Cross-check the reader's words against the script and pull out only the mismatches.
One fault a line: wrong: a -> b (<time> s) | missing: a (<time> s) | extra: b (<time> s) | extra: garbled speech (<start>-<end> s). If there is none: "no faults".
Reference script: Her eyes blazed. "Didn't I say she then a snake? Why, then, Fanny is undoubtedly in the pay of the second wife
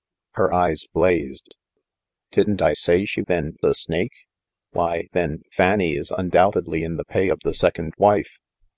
no faults